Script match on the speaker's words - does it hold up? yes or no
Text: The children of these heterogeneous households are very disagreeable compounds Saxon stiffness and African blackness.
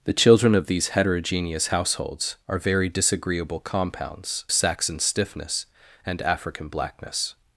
yes